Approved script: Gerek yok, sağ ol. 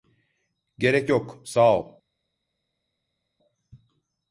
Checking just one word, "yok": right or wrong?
right